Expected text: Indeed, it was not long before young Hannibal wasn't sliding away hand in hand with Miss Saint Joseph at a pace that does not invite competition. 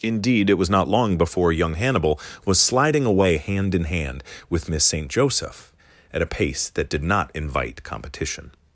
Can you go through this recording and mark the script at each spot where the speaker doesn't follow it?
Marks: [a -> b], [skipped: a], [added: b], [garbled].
Indeed, it was not long before young Hannibal [wasn't -> was] sliding away hand in hand with Miss Saint Joseph at a pace that [does -> did] not invite competition.